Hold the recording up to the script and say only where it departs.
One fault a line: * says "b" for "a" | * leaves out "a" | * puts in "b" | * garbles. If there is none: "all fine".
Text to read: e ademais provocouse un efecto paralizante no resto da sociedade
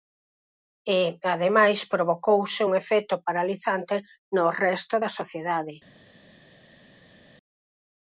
all fine